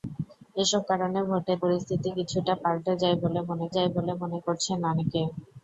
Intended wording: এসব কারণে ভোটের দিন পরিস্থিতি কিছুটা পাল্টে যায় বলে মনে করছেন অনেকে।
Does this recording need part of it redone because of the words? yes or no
yes